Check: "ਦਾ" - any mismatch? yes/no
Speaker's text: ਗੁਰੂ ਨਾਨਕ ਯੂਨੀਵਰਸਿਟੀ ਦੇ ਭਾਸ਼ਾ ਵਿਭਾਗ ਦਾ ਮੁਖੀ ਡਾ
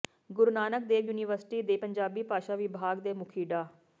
yes